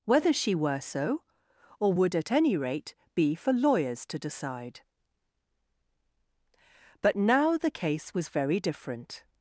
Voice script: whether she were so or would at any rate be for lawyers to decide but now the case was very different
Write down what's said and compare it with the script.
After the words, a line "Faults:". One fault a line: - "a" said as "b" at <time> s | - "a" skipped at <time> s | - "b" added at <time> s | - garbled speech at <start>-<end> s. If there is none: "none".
whether she were so or would at any rate be for lawyers to decide but now the case was very different
Faults:
none